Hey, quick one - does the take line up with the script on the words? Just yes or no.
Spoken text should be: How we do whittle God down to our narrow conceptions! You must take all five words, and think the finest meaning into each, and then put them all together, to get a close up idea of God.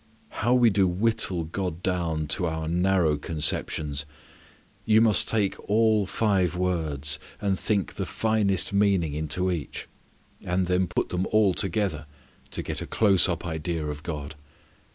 yes